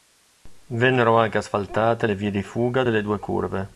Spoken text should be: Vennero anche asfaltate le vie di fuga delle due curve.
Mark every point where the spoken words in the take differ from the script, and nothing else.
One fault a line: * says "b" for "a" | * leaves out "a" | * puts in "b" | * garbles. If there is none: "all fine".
all fine